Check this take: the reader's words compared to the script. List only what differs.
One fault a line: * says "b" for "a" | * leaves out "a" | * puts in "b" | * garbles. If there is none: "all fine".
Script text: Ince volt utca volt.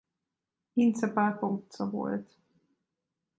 * says "pápa" for "volt"